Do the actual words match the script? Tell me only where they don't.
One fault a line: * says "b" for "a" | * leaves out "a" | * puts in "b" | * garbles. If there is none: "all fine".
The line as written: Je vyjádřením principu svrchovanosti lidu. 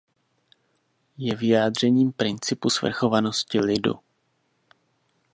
all fine